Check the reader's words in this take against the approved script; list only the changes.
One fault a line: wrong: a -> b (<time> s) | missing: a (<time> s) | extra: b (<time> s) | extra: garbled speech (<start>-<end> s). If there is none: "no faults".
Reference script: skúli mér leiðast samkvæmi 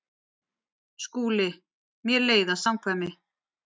no faults